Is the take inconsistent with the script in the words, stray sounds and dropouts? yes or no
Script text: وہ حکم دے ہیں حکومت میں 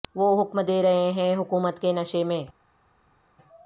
yes